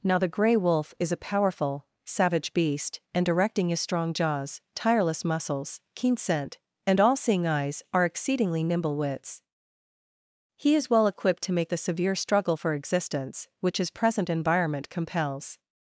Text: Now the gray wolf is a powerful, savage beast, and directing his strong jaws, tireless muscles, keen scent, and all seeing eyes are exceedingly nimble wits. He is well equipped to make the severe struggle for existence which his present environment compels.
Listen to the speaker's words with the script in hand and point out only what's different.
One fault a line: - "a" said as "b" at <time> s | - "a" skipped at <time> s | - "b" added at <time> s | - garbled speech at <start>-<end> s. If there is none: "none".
none